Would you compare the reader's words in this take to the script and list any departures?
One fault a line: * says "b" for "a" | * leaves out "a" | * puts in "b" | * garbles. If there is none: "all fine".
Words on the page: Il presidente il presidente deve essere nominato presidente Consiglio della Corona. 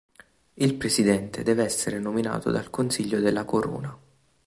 * leaves out "il presidente"
* says "dal" for "presidente"